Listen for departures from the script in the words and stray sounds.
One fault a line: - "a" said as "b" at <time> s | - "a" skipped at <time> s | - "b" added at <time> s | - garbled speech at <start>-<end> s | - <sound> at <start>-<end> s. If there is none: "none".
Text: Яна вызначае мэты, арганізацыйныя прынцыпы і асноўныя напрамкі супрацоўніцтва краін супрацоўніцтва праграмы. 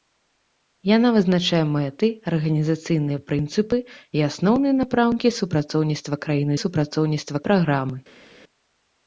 none